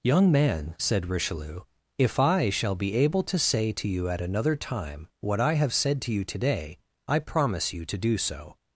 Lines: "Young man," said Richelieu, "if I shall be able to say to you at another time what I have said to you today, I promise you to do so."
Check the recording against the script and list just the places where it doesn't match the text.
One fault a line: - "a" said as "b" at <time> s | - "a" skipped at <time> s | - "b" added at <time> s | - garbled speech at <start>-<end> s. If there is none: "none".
none